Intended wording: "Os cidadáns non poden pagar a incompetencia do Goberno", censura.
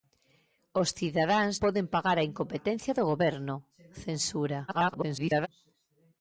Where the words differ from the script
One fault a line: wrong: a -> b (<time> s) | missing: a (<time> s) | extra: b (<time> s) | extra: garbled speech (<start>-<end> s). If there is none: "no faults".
missing: non (1.6 s)
extra: garbled speech (4.7-5.5 s)